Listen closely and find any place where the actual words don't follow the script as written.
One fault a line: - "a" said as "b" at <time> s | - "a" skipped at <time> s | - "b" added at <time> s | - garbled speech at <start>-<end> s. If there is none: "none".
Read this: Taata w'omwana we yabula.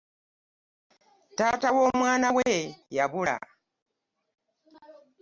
none